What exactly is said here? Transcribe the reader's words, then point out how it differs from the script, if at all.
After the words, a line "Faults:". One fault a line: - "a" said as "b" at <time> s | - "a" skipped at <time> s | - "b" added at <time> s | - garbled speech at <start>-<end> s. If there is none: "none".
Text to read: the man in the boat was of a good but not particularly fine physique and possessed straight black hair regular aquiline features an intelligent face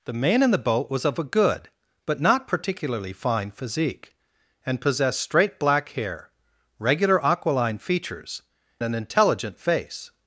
the man in the boat was of a good but not particularly fine physique and possessed straight black hair regular aquiline features an intelligent face
Faults:
none